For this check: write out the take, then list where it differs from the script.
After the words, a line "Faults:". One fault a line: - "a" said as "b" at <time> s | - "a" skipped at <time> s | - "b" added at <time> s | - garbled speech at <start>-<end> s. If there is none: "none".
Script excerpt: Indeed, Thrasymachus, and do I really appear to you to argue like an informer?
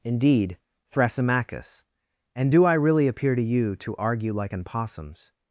Indeed, Thrasymachus, and do I really appear to you to argue like an possums?
Faults:
- "informer" said as "possums" at 4.6 s